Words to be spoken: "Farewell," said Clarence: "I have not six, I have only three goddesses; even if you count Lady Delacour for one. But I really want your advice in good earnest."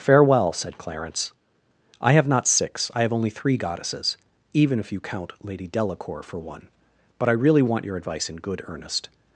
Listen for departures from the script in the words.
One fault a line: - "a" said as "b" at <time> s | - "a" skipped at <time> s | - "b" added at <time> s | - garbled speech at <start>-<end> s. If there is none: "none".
none